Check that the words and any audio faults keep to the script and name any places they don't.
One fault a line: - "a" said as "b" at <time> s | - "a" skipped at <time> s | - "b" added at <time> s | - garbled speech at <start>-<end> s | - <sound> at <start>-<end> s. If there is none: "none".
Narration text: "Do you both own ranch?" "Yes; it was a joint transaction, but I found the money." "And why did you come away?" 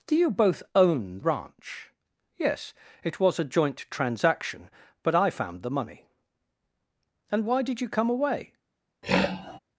- throat clearing at 9.0-9.6 s